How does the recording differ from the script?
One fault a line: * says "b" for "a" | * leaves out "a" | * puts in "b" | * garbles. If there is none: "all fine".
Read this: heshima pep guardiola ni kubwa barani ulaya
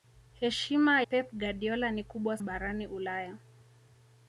all fine